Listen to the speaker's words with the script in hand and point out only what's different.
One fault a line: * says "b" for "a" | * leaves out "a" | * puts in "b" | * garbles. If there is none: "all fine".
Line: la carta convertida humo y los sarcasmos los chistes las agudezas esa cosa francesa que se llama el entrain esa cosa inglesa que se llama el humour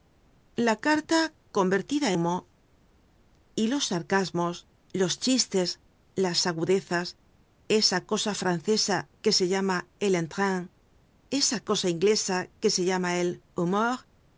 all fine